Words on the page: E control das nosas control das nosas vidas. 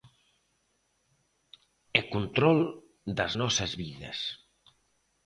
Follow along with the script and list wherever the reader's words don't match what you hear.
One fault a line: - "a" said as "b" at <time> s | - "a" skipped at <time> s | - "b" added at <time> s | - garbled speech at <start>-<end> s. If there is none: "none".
- "control das nosas" skipped at 3.7 s